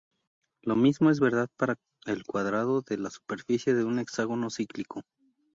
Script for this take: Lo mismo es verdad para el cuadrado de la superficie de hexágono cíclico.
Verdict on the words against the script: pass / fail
fail